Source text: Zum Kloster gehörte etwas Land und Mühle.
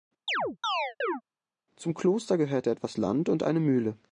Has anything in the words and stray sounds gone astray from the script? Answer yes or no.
yes